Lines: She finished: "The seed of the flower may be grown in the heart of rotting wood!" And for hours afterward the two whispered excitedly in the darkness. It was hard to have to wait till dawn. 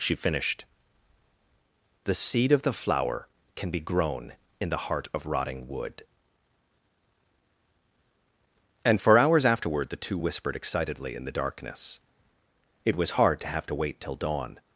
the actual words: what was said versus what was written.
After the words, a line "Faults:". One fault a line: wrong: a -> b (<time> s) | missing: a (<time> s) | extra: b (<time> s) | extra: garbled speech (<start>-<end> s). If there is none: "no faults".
She finished: "The seed of the flower can be grown in the heart of rotting wood!" And for hours afterward the two whispered excitedly in the darkness. It was hard to have to wait till dawn.
Faults:
wrong: may -> can (3.5 s)